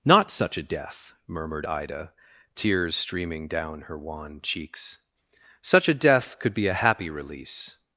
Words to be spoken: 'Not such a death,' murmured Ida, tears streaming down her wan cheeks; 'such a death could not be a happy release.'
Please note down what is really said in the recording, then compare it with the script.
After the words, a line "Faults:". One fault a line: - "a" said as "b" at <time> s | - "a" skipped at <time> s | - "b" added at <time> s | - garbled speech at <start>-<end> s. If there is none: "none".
'Not such a death,' murmured Ida, tears streaming down her wan cheeks; 'such a death could be a happy release.'
Faults:
- "not" skipped at 6.5 s